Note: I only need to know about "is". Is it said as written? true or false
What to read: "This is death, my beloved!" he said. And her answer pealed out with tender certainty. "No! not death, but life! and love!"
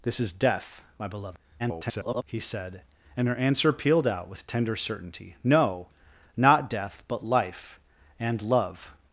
true